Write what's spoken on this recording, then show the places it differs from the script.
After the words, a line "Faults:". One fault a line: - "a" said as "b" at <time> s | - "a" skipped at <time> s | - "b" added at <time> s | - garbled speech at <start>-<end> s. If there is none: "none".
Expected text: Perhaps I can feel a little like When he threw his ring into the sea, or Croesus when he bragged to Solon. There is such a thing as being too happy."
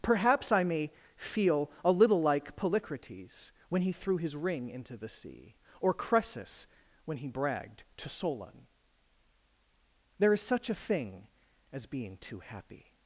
Perhaps I may feel a little like Polycrates when he threw his ring into the sea, or Croesus when he bragged to Solon. There is such a thing as being too happy."
Faults:
- "can" said as "may" at 0.6 s
- "Polycrates" added at 2.5 s